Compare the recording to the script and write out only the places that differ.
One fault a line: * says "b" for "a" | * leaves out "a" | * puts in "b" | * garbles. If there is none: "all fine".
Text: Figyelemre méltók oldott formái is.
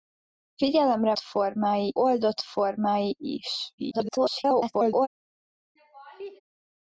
* says "formái" for "méltók"
* garbles